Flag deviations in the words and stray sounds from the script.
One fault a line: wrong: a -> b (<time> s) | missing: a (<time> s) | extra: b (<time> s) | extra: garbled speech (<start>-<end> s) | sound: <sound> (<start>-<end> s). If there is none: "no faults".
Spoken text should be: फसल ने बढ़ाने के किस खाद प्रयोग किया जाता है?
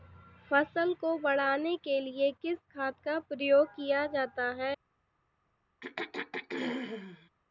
wrong: ने -> को (0.9 s)
extra: लिए (2.0 s)
extra: का (3.0 s)
sound: throat clearing (5.8-7.3 s)